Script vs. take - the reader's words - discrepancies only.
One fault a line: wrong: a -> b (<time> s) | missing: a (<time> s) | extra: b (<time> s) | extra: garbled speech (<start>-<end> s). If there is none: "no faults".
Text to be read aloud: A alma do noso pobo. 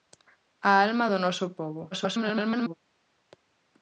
extra: garbled speech (1.9-2.7 s)